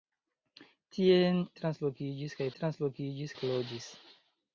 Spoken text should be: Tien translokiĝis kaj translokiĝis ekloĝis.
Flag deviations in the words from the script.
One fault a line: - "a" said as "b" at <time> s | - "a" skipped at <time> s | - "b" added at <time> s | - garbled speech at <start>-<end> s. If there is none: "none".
none